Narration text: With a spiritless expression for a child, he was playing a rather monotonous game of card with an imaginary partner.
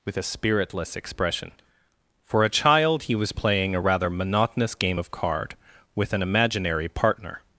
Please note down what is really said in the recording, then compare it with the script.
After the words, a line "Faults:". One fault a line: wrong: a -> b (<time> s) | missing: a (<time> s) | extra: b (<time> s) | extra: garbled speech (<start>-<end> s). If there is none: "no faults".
With a spiritless expression for a child, he was playing a rather monotonous game of card with an imaginary partner.
Faults:
no faults